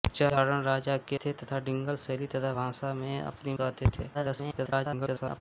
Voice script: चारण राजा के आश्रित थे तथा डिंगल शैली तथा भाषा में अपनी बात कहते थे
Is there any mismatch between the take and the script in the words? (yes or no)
yes